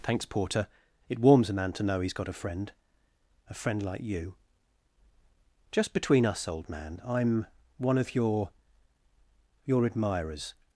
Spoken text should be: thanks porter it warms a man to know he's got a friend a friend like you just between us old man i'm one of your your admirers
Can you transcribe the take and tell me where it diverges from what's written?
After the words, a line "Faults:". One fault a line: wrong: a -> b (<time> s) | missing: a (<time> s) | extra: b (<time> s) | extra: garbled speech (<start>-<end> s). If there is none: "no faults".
thanks porter it warms a man to know he's got a friend a friend like you just between us old man i'm one of your your admirers
Faults:
no faults